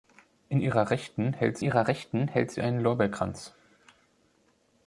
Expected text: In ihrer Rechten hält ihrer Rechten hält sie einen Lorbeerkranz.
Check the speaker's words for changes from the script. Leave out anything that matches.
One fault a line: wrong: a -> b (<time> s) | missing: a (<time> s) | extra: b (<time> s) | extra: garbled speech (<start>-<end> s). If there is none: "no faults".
no faults